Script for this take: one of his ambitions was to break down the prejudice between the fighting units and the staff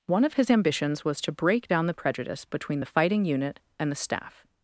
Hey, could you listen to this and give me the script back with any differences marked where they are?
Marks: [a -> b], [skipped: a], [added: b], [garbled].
one of his ambitions was to break down the prejudice between the fighting [units -> unit] and the staff